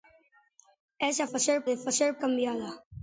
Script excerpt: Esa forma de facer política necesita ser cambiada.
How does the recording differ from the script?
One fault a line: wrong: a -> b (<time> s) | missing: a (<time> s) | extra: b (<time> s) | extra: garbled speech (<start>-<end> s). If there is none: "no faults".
wrong: forma -> facer (1.2 s)
missing: política necesita ser (2.2 s)